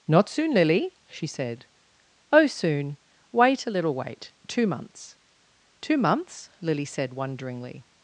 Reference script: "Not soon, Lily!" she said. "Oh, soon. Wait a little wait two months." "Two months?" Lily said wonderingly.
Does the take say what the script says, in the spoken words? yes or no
yes